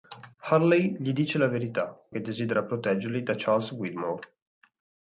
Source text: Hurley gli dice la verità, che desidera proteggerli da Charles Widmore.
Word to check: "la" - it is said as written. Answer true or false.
true